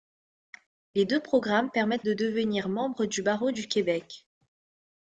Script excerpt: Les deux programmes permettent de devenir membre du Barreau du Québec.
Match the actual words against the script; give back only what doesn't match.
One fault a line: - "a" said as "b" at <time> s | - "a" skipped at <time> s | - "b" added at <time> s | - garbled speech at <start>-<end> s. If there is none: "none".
none